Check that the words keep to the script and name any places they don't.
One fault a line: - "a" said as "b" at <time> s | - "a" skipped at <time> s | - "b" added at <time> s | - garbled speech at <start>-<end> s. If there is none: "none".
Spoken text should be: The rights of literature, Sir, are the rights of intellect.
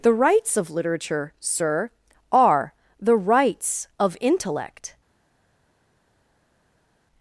none